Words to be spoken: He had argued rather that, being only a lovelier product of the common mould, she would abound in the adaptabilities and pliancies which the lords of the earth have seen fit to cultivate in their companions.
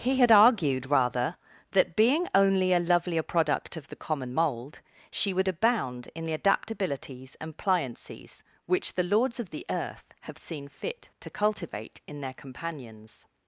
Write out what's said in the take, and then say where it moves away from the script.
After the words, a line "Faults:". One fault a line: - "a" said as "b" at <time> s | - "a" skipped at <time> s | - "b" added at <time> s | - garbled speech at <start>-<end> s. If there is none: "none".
He had argued rather that, being only a lovelier product of the common mould, she would abound in the adaptabilities and pliancies which the lords of the earth have seen fit to cultivate in their companions.
Faults:
none